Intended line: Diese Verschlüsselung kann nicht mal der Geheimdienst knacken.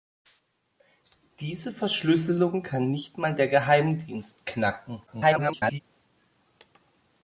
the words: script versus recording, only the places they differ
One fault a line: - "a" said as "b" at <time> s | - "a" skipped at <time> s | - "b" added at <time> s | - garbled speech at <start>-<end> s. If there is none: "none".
- garbled speech at 5.1-5.8 s